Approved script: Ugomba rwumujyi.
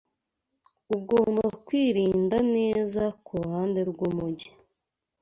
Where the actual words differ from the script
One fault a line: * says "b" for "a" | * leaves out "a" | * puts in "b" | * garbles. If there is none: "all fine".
* puts in "kwirinda neza kuruhande"